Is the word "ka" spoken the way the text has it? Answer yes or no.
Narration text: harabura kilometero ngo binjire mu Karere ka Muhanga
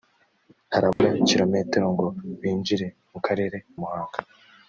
no